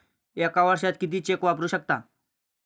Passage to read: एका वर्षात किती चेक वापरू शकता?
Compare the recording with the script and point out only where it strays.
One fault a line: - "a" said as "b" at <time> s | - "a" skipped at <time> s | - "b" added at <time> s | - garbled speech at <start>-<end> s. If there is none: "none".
none